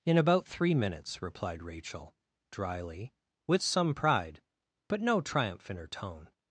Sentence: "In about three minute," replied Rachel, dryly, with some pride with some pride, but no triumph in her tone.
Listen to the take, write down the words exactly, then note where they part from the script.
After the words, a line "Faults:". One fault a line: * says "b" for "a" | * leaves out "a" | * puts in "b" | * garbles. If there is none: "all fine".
"In about three minutes," replied Rachel, dryly, with some pride, but no triumph in her tone.
Faults:
* says "minutes" for "minute"
* leaves out "with some pride"